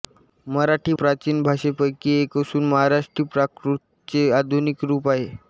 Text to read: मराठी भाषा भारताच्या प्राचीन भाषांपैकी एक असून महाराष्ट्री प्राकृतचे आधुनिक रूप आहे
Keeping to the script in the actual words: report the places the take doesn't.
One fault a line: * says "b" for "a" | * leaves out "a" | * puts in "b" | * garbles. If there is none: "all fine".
* leaves out "भाषा भारताच्या"